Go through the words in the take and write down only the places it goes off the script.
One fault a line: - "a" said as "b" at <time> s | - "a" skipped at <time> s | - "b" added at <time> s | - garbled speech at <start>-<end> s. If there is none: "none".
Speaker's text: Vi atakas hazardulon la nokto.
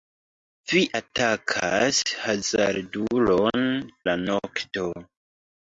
none